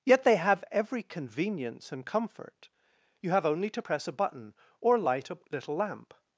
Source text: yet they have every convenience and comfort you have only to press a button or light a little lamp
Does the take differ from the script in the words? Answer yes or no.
no